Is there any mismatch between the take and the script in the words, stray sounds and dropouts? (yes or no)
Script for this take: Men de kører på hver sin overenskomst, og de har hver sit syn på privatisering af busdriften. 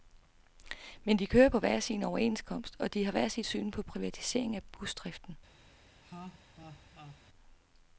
yes